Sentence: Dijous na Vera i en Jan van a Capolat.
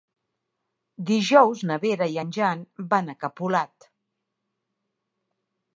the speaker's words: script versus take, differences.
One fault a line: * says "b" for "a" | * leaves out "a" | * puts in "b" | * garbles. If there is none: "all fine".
all fine